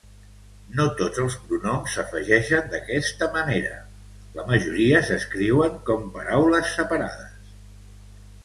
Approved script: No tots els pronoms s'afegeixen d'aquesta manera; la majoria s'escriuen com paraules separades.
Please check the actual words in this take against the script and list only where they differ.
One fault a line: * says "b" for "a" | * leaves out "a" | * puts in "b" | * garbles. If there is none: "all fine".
all fine